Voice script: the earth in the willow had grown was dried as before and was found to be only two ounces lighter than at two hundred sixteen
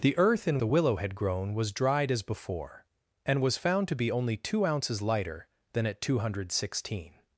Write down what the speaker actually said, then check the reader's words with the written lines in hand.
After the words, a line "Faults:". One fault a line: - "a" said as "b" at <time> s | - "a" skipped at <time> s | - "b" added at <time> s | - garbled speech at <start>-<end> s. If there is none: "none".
the earth in the willow had grown was dried as before and was found to be only two ounces lighter than at two hundred sixteen
Faults:
none